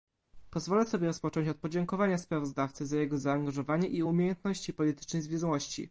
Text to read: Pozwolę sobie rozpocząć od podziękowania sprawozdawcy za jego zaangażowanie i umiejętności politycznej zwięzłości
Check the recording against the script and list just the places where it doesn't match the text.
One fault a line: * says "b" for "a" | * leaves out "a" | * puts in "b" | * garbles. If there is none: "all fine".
all fine